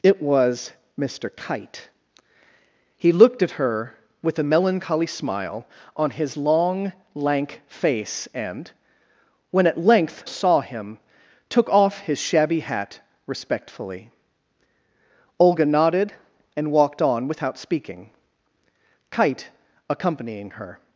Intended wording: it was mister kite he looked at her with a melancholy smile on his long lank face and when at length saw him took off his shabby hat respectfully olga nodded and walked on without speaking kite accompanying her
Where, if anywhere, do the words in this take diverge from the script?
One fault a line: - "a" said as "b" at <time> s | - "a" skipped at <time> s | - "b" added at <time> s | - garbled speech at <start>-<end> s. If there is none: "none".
none